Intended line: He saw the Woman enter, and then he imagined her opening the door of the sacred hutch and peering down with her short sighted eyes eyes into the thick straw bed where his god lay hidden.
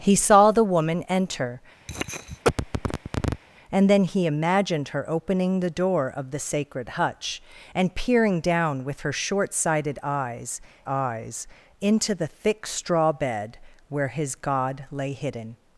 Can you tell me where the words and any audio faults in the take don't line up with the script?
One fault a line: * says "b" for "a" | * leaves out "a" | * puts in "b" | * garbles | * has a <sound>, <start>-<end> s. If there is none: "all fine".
* has a cough, 1.9-3.4 s